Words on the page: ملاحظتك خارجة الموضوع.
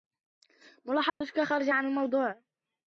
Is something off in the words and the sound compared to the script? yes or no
yes